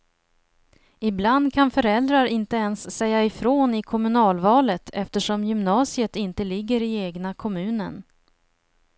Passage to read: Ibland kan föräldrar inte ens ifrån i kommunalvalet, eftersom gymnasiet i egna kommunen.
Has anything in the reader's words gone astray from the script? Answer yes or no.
yes